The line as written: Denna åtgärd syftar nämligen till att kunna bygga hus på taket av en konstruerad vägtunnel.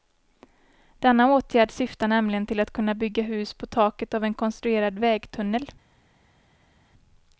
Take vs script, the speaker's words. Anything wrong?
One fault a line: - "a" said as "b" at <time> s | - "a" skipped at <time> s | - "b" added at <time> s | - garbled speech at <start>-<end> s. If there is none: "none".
none